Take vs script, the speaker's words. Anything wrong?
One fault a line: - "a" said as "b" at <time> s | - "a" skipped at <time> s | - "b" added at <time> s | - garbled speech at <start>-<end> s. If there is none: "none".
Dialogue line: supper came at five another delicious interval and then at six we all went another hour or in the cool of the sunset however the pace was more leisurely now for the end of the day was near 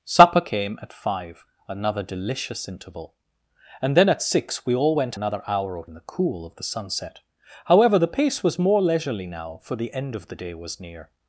none